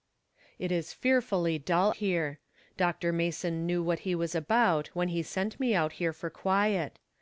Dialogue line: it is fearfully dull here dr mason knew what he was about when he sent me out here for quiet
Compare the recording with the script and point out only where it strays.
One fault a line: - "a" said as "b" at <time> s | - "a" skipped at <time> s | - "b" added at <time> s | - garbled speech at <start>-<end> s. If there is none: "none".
none